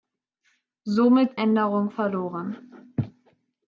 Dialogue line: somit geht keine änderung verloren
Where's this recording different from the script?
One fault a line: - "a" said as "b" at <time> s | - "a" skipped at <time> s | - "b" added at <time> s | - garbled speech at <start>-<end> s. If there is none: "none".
- "geht keine" skipped at 1.4 s